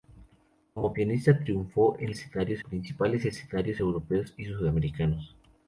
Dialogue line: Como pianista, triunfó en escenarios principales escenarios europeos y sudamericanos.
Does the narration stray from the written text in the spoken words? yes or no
no